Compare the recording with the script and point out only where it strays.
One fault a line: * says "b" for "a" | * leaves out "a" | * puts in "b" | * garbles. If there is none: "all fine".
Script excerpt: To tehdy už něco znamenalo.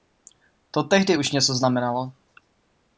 all fine